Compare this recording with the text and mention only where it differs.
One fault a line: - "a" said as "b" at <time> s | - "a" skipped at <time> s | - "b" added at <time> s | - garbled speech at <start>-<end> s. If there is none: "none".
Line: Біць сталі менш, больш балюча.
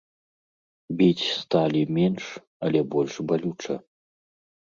- "але" added at 2.7 s